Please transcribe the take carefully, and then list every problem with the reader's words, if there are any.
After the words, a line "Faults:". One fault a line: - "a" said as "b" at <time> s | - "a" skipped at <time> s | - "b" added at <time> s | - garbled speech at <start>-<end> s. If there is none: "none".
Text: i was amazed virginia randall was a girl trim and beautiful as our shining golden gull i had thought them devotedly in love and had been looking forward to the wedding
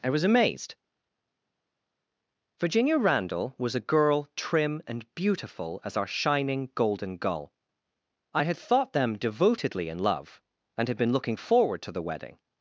i was amazed virginia randall was a girl trim and beautiful as our shining golden gull i had thought them devotedly in love and had been looking forward to the wedding
Faults:
none